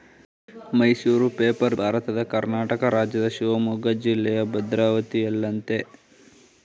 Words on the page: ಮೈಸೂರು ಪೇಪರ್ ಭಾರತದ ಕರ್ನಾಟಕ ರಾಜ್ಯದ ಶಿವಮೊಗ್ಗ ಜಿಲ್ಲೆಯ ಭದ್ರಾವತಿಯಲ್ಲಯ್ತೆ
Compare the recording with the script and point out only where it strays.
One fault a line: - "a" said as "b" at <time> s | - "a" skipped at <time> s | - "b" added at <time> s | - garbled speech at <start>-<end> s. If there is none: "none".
none